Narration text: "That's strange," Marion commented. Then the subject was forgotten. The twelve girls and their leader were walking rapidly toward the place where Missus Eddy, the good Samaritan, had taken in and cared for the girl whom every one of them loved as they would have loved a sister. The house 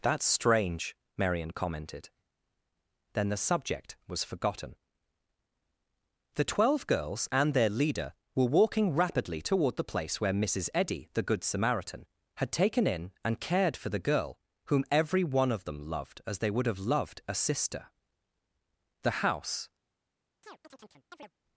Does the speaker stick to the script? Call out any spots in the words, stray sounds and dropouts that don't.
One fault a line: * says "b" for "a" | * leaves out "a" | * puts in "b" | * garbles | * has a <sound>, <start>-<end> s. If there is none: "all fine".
* has a chirp, 20.4-21.3 s